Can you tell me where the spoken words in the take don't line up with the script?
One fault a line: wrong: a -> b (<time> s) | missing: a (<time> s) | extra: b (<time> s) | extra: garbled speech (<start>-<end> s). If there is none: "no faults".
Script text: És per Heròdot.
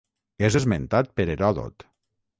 extra: esmentat (0.6 s)